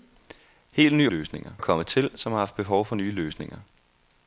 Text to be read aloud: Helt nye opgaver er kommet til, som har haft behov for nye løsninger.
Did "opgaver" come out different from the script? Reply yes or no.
yes